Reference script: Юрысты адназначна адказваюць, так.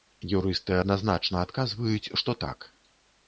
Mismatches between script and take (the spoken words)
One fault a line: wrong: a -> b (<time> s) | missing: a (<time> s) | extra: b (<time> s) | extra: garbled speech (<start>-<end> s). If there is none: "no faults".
extra: што (2.2 s)